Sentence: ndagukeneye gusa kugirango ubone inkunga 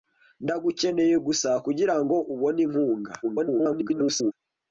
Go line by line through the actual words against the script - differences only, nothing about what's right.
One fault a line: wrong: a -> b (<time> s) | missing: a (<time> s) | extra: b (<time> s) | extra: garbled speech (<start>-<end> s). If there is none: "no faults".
extra: garbled speech (3.2-4.3 s)